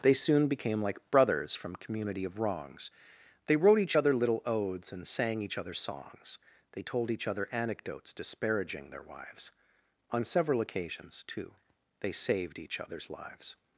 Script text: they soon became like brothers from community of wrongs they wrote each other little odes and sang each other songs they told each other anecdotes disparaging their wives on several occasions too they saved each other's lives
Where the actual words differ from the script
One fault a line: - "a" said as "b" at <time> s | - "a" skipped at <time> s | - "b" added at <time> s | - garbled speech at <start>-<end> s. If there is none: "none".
none